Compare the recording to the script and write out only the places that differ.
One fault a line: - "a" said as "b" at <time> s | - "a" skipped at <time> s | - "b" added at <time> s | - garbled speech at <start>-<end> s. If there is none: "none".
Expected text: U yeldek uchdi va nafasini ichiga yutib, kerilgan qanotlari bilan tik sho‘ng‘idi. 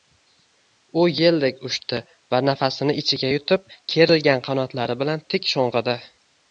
none